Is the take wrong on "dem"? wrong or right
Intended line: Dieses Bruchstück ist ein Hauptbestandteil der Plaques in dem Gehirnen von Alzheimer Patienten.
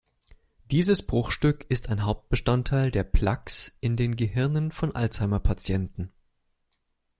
wrong